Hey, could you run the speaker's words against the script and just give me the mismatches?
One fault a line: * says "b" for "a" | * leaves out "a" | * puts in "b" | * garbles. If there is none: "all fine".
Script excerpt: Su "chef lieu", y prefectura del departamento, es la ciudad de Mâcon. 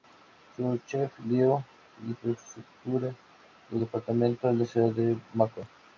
all fine